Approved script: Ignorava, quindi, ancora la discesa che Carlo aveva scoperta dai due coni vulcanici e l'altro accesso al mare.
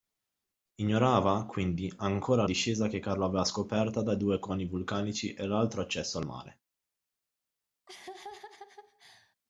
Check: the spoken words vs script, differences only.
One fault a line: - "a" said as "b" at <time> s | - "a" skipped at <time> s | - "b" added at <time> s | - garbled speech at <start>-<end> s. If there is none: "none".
- "la" skipped at 2.5 s